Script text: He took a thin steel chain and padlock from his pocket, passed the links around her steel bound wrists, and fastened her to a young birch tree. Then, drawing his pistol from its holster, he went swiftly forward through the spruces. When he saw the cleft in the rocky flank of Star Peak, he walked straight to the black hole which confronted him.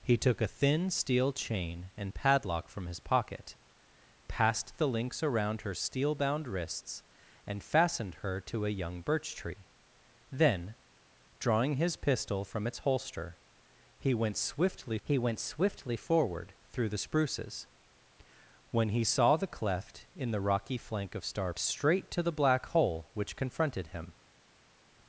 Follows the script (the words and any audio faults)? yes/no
no